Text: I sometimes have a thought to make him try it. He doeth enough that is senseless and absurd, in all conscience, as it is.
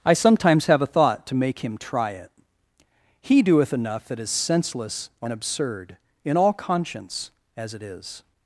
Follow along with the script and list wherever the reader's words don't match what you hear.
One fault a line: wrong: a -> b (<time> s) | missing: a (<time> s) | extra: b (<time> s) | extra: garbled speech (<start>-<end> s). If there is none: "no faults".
no faults